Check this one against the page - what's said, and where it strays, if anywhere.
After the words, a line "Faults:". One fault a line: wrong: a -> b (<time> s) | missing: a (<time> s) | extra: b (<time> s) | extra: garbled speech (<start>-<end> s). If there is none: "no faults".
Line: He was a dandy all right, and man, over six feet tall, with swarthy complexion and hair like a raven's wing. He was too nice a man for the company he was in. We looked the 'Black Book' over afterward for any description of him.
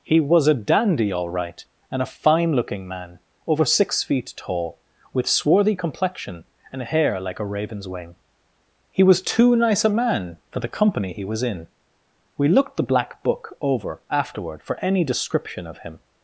He was a dandy all right, and a fine looking man, over six feet tall, with swarthy complexion and hair like a raven's wing. He was too nice a man for the company he was in. We looked the 'Black Book' over afterward for any description of him.
Faults:
extra: a fine looking (2.0 s)